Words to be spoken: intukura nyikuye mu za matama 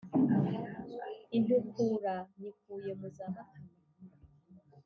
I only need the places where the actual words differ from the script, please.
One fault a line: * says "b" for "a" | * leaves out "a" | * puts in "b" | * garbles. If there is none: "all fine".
all fine